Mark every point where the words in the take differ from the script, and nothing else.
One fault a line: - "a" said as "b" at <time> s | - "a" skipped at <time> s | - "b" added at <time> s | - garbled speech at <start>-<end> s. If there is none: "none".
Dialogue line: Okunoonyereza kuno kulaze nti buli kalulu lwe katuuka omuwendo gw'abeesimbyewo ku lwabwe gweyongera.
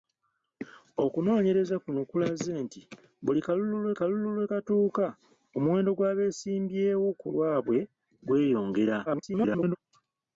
- "kalulu lwe" added at 4.0 s
- garbled speech at 9.1-9.8 s